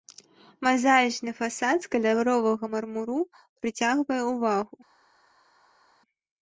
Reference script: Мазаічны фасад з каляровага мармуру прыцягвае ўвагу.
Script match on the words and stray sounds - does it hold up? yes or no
yes